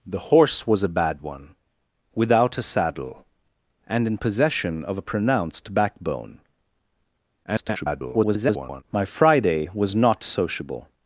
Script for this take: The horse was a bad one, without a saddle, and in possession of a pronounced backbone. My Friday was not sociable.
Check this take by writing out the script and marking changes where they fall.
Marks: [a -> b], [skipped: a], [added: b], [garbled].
The horse was a bad one, without a saddle, and in possession of a pronounced backbone. [garbled] My Friday was not sociable.